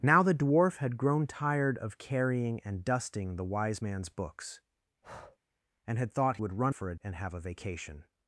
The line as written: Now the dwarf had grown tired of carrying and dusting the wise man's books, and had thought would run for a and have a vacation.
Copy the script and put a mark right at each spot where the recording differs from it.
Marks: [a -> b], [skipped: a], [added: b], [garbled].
Now the dwarf had grown tired of carrying and dusting the wise man's books, and had thought would run for a and have a vacation.